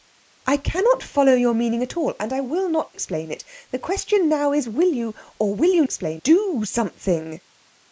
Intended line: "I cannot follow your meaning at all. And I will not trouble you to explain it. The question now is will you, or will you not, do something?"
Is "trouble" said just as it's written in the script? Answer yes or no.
no